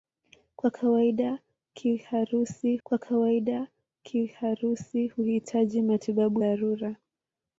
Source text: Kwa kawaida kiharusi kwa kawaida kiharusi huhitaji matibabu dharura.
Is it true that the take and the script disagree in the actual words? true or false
false